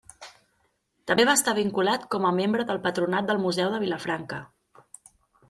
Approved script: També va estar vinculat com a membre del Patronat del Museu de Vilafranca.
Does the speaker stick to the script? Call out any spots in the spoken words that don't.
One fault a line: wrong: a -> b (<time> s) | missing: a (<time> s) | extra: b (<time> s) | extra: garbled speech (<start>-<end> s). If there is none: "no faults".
no faults